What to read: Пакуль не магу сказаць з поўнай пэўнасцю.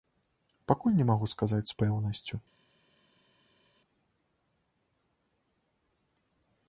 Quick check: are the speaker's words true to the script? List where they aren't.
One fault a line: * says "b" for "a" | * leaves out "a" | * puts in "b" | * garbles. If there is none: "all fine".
* leaves out "поўнай"